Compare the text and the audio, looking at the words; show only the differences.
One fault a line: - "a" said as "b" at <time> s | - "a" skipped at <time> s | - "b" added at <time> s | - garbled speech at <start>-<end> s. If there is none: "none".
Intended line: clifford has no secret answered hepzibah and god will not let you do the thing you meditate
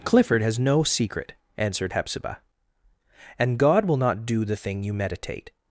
- "let you" skipped at 4.2 s